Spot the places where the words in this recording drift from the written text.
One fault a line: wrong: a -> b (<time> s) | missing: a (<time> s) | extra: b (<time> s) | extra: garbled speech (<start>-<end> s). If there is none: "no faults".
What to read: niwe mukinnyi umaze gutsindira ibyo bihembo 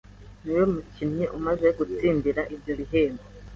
no faults